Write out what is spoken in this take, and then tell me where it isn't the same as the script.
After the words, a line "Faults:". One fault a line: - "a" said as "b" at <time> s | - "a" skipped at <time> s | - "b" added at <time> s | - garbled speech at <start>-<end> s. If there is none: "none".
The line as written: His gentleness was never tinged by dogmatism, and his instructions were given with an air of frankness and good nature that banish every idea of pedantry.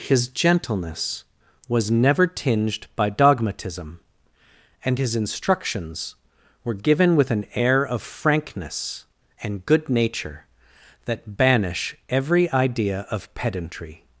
His gentleness was never tinged by dogmatism, and his instructions were given with an air of frankness and good nature that banish every idea of pedantry.
Faults:
none